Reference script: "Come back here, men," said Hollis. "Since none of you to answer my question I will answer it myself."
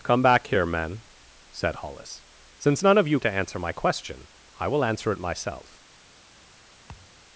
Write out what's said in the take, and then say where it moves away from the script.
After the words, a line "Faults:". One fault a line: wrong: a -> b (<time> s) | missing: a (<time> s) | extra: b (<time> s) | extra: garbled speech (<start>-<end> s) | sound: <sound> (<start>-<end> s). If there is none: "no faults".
"Come back here, men," said Hollis. "Since none of you to answer my question I will answer it myself."
Faults:
sound: thud (6.9-7.2 s)